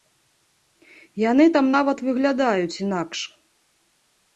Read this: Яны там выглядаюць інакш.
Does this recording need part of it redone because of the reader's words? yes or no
yes